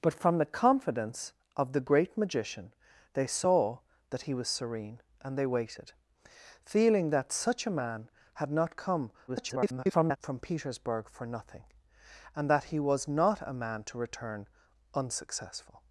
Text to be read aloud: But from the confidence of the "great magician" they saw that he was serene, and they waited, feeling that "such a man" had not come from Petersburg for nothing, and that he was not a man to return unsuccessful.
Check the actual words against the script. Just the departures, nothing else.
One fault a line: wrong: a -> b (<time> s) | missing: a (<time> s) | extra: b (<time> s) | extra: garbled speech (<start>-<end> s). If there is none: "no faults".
extra: garbled speech (9.3-10.2 s)